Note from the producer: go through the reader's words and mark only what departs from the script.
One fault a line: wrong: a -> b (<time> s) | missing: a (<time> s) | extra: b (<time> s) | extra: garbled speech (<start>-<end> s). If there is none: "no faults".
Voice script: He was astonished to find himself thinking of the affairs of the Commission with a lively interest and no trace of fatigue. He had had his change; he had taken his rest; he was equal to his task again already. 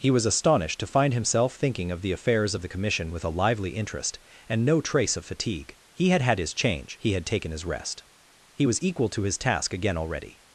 no faults